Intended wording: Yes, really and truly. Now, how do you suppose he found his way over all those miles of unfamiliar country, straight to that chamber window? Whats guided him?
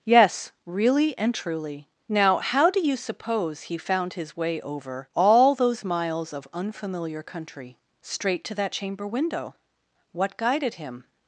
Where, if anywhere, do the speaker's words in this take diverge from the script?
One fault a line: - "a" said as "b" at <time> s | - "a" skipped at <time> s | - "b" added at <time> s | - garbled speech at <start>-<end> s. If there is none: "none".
- "Whats" said as "What" at 10.1 s